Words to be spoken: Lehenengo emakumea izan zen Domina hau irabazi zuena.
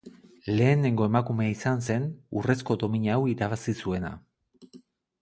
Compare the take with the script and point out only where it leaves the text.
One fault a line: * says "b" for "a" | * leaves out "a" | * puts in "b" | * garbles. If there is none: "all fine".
* puts in "Urrezko"